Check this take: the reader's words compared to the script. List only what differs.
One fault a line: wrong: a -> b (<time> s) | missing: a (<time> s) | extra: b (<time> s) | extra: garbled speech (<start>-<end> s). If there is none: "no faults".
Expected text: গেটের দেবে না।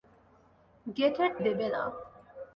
no faults